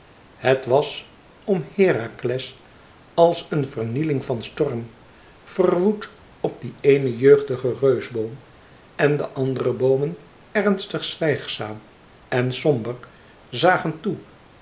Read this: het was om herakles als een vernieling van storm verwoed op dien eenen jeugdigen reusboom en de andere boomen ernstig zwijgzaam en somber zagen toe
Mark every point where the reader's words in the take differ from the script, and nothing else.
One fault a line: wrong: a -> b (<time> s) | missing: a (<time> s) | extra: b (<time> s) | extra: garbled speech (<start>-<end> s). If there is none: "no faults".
no faults